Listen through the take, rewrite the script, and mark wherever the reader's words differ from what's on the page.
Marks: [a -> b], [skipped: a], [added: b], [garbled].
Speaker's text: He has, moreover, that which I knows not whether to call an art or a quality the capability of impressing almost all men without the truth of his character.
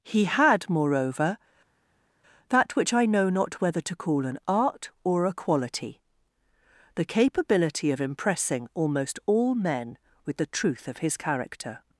He [has, -> had] moreover, that which I [knows -> know] not whether to call an art or a quality the capability of impressing almost all men [without -> with] the truth of his character.